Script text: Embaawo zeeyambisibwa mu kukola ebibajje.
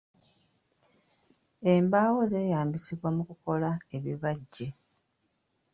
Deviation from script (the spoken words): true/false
false